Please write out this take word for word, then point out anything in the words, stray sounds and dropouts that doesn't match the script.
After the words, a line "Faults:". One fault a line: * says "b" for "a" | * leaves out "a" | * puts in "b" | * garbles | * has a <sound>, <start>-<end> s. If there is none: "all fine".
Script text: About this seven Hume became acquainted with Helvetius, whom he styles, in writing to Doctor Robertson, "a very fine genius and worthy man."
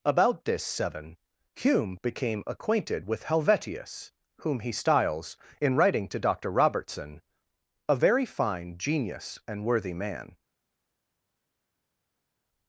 About this seven Hume became acquainted with Helvetius, whom he styles, in writing to Doctor Robertson, "a very fine genius and worthy man."
Faults:
all fine